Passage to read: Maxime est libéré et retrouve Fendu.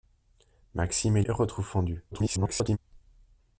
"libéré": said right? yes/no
no